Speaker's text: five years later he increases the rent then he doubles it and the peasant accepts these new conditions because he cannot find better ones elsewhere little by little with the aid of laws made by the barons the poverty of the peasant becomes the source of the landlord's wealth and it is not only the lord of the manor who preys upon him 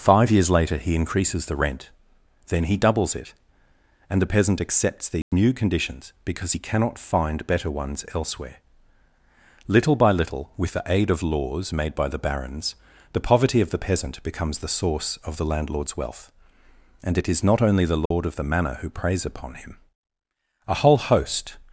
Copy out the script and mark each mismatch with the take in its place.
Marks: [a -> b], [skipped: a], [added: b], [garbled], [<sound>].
five years later he increases the rent then he doubles it and the peasant accepts these [dropout] new conditions because he cannot find better ones elsewhere little by little with the aid of laws made by the barons the poverty of the peasant becomes the source of the landlord's wealth and it is not only the lord [dropout] of the manor who preys upon him [added: a whole host]